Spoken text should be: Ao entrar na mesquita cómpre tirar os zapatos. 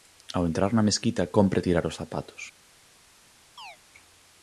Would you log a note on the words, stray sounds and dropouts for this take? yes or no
yes